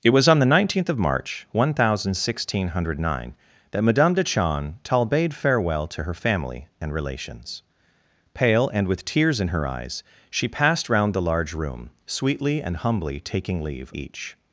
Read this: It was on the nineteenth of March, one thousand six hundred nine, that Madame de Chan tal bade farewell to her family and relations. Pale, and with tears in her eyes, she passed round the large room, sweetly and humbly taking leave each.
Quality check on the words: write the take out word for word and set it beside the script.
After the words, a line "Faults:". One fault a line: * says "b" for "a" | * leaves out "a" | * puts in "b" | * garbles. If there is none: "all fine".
It was on the nineteenth of March, one thousand six hundred nine, that Madame de Chan tal bade farewell to her family and relations. Pale, and with tears in her eyes, she passed round the large room, sweetly and humbly taking leave each.
Faults:
all fine